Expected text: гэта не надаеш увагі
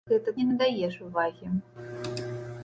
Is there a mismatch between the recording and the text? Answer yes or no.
no